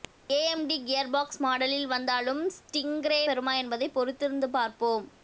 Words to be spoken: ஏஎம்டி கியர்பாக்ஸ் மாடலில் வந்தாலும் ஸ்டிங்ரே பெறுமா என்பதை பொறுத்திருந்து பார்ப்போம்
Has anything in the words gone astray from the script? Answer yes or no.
no